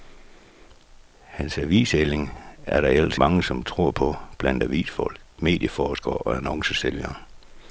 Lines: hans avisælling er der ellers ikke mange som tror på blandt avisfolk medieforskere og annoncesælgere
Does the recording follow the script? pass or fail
fail